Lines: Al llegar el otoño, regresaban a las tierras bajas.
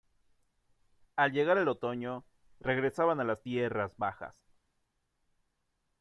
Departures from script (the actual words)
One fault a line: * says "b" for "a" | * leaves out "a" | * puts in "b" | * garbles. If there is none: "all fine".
all fine